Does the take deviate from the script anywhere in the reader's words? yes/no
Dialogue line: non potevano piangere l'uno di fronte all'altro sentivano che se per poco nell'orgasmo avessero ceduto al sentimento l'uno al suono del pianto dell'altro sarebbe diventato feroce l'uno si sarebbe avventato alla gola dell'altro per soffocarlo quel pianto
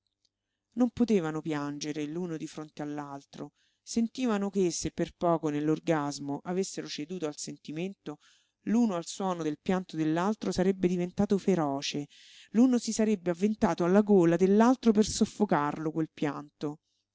no